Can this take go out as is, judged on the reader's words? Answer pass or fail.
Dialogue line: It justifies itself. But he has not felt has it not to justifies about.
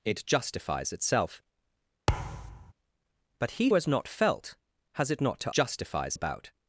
pass